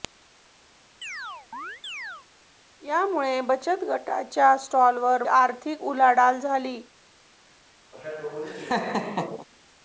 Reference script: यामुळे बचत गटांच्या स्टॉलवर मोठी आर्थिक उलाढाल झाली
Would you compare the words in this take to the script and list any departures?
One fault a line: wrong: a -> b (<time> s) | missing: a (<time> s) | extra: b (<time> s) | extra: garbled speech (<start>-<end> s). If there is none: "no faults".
missing: मोठी (5.2 s)